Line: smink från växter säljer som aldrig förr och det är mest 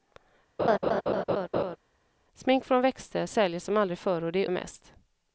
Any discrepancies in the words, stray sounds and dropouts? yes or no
yes